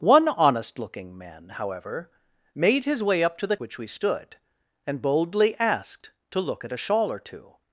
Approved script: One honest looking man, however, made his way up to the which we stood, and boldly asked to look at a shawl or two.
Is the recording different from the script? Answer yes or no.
no